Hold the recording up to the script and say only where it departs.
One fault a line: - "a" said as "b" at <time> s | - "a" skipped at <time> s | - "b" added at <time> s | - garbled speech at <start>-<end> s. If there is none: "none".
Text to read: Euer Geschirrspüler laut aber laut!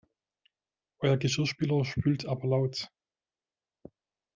- "laut" said as "spült" at 1.9 s